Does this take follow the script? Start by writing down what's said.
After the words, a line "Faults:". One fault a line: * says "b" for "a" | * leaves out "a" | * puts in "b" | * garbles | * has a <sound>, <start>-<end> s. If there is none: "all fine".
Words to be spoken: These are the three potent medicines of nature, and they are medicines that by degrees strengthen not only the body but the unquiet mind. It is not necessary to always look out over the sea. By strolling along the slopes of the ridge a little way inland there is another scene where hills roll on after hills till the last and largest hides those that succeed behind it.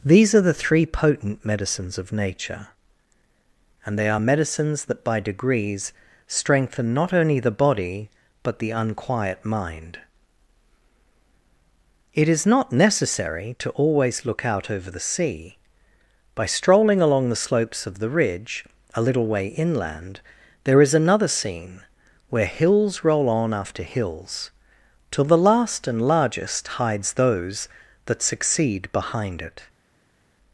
These are the three potent medicines of nature, and they are medicines that by degrees strengthen not only the body but the unquiet mind. It is not necessary to always look out over the sea. By strolling along the slopes of the ridge a little way inland there is another scene where hills roll on after hills till the last and largest hides those that succeed behind it.
Faults:
all fine